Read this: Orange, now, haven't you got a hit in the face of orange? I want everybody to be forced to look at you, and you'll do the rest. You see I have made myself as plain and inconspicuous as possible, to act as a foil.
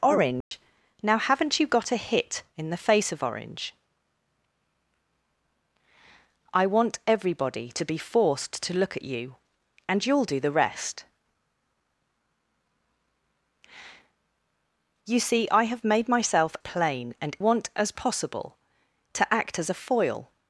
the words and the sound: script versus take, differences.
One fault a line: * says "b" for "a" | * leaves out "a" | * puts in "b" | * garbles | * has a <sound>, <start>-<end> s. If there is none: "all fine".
* has a dropout, 0.4-0.5 s
* leaves out "as"
* says "want" for "inconspicuous"